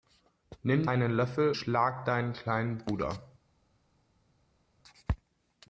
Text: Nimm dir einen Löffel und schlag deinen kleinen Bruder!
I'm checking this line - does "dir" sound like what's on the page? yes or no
no